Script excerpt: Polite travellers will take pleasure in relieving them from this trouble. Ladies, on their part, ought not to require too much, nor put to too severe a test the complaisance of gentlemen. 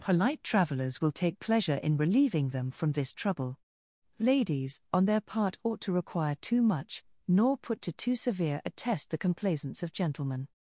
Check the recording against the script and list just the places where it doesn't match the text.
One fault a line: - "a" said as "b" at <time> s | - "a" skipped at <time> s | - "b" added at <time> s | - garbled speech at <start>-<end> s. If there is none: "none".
- "not" skipped at 5.8 s